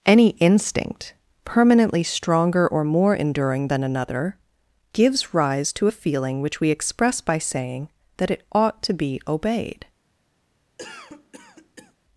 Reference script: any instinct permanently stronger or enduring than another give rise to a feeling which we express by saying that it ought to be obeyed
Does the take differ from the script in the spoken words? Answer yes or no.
yes